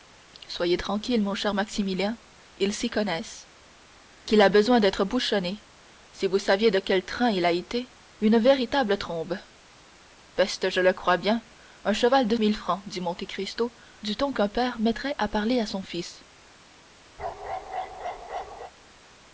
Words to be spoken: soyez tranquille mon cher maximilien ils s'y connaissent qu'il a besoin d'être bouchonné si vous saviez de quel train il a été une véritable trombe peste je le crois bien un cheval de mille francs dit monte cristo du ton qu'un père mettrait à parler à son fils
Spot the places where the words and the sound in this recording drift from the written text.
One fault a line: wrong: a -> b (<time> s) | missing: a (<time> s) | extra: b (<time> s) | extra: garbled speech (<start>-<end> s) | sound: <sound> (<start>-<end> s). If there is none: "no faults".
sound: bark (17.2-18.7 s)